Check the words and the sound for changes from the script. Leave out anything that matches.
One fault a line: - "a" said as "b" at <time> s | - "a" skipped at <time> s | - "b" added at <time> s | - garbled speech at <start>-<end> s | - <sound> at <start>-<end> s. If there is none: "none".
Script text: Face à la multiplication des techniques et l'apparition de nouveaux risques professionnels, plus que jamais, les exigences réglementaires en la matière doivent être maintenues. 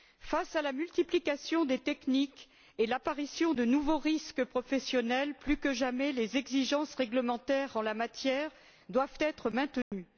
- dropout at 9.8-9.9 s